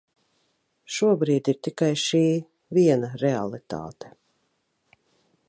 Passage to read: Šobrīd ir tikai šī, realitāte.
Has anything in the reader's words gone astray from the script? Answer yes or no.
yes